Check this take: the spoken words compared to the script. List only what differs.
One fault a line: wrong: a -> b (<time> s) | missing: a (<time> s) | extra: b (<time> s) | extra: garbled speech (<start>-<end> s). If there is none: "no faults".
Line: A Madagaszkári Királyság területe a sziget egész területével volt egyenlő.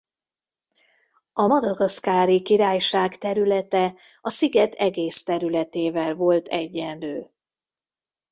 no faults